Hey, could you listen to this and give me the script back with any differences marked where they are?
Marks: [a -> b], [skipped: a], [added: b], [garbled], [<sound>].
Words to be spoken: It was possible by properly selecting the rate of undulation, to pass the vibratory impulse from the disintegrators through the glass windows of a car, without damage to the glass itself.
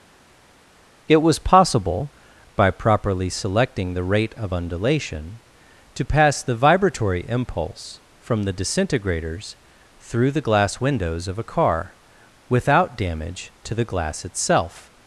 It was possible by properly selecting the rate of undulation, to pass the vibratory impulse from the disintegrators through the glass windows of a car, without damage to the glass itself.